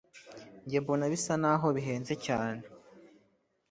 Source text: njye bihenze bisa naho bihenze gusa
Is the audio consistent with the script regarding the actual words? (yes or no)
no